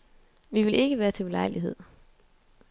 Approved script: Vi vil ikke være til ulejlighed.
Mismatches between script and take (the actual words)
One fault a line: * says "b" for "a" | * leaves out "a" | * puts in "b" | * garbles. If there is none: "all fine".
all fine